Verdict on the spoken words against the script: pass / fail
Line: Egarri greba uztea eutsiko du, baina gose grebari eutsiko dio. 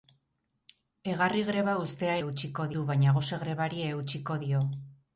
pass